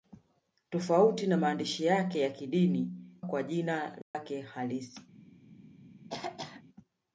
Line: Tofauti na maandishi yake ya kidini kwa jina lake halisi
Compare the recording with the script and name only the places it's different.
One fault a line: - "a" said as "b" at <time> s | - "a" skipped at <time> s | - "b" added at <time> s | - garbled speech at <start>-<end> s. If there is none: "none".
none